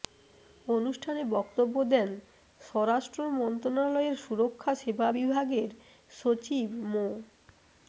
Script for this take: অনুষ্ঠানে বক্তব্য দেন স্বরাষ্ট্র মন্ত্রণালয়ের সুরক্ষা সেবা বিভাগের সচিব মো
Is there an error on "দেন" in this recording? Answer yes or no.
no